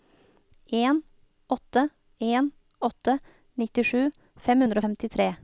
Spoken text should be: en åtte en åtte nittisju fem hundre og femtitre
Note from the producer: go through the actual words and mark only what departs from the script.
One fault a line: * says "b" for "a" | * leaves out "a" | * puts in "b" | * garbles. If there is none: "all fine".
all fine